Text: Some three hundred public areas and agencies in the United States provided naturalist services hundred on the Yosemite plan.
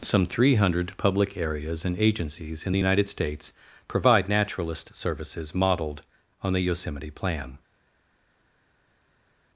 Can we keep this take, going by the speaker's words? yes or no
no